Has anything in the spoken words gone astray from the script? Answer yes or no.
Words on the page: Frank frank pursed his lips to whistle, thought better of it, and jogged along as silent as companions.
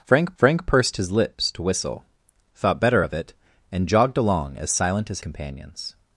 no